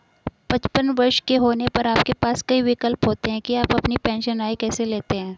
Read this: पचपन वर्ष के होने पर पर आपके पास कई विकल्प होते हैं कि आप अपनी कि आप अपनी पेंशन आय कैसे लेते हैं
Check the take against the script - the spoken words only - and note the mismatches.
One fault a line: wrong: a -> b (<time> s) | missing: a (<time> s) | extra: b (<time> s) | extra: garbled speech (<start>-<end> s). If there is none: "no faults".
missing: पर (1.9 s)
missing: कि आप अपनी (4.0 s)